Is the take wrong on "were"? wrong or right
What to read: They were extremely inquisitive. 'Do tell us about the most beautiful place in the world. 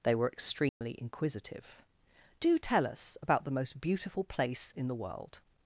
right